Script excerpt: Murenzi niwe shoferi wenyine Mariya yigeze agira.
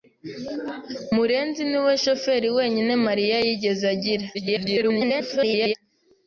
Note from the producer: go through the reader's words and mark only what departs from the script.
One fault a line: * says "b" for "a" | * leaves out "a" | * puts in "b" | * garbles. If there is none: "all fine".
* garbles